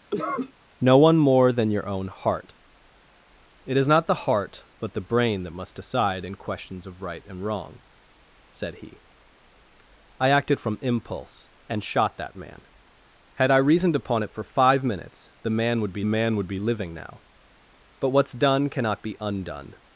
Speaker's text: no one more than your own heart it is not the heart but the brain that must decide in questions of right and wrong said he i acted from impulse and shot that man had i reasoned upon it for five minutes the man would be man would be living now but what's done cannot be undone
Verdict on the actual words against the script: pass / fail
pass